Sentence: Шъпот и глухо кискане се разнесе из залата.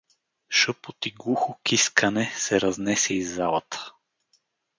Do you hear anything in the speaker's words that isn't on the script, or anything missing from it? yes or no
no